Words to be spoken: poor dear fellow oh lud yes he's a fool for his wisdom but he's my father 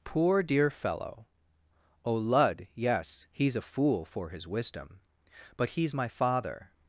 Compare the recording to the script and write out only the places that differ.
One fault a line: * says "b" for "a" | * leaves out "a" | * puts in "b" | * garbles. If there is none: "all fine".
all fine